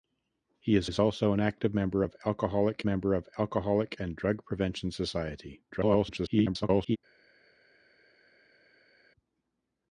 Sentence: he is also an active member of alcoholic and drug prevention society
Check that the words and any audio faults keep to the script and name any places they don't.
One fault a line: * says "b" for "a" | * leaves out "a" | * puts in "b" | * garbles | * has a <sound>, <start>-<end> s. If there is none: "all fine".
* puts in "is"
* puts in "member of alcoholic"
* garbles